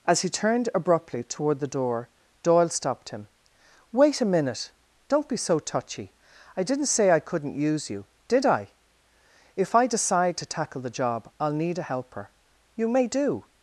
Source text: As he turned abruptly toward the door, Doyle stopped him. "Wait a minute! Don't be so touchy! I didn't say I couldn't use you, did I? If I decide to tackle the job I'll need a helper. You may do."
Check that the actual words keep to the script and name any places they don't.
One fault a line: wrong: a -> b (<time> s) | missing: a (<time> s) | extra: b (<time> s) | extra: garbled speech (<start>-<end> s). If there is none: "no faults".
no faults